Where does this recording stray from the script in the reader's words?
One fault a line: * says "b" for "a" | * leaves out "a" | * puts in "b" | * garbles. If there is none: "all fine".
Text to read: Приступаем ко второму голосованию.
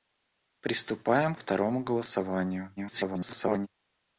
* leaves out "ко"
* garbles